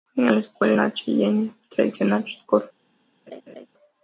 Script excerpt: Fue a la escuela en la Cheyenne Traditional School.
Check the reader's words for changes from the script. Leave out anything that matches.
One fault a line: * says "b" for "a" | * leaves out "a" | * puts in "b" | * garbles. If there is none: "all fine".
* leaves out "a"
* leaves out "en"